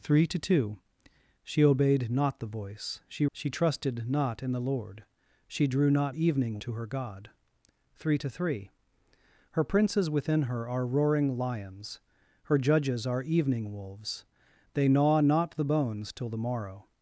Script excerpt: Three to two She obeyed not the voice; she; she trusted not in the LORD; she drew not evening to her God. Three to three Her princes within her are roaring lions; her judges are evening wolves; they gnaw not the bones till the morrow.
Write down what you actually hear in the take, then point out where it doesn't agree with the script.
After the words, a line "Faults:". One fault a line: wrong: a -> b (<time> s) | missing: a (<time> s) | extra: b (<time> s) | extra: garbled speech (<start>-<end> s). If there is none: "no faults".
Three to two She obeyed not the voice; she; she trusted not in the LORD; she drew not evening to her God. Three to three Her princes within her are roaring lions; her judges are evening wolves; they gnaw not the bones till the morrow.
Faults:
no faults